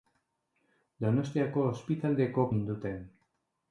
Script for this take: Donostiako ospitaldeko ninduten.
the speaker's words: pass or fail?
pass